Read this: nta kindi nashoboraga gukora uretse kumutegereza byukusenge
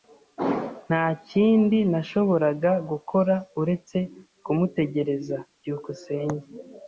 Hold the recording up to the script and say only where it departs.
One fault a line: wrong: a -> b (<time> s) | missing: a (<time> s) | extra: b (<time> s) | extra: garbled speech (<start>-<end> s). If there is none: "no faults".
no faults